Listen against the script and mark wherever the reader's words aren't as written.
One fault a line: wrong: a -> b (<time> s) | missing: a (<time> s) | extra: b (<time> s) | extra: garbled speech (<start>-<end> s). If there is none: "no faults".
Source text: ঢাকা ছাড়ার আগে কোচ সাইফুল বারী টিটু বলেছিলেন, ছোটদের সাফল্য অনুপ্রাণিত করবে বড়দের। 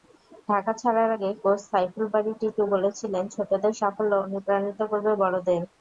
no faults